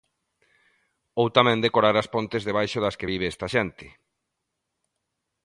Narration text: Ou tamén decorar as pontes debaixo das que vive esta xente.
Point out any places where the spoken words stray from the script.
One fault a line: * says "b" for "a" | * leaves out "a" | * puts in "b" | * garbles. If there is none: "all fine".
all fine